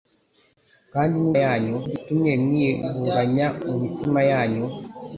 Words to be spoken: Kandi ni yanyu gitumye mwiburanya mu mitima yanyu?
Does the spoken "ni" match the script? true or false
true